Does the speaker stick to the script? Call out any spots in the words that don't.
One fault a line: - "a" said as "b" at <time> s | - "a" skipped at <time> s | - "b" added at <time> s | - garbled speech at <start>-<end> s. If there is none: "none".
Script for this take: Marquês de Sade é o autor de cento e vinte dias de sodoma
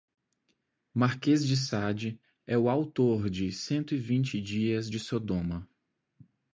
none